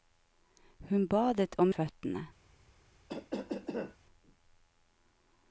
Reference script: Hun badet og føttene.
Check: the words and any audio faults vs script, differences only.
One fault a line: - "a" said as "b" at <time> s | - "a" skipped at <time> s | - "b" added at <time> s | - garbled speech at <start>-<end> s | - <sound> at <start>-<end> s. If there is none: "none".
- cough at 3.1-4.0 s